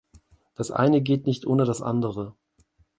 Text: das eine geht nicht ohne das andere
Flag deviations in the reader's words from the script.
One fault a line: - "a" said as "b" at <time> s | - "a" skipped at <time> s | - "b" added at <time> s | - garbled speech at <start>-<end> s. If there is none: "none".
none